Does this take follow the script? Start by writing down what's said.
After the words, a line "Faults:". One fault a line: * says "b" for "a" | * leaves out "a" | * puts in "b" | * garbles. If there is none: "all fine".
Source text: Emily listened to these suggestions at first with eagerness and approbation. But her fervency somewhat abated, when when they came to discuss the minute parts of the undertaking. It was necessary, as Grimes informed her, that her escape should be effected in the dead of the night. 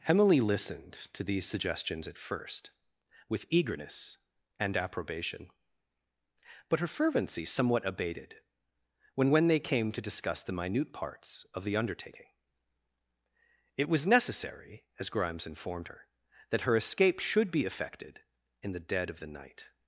Emily listened to these suggestions at first with eagerness and approbation. But her fervency somewhat abated, when when they came to discuss the minute parts of the undertaking. It was necessary, as Grimes informed her, that her escape should be effected in the dead of the night.
Faults:
all fine